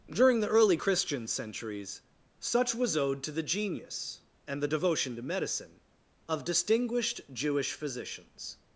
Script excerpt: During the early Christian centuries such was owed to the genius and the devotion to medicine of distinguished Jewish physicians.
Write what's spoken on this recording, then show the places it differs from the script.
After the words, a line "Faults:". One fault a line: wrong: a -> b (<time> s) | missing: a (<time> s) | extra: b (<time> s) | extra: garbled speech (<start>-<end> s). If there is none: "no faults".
During the early Christian centuries such was owed to the genius and the devotion to medicine of distinguished Jewish physicians.
Faults:
no faults